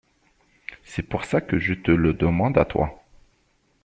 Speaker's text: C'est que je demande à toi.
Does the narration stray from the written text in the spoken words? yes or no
yes